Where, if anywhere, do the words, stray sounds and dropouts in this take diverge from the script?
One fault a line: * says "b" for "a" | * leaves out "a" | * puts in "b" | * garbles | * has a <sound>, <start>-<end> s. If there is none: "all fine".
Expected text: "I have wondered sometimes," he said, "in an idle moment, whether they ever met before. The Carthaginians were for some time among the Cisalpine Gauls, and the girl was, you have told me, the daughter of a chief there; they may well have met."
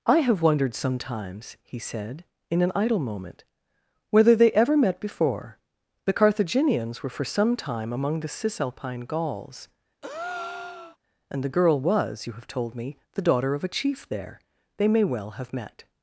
* has a breath, 10.0-11.0 s